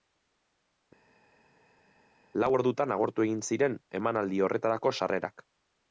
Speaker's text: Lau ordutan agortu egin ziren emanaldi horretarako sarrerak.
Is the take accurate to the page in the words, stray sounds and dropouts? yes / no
yes